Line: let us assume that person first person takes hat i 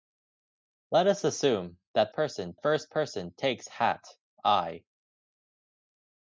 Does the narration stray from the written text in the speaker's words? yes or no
no